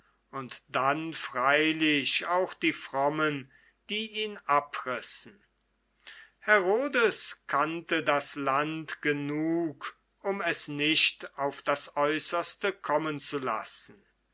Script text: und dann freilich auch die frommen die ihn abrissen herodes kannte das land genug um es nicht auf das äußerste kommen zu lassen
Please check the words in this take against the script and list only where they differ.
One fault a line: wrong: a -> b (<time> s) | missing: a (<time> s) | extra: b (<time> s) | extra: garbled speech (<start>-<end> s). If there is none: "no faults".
no faults